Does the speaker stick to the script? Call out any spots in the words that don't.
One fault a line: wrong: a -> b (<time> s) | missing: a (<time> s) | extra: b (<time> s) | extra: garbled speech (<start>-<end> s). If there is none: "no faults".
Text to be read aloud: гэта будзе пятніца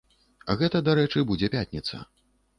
extra: дарэчы (0.9 s)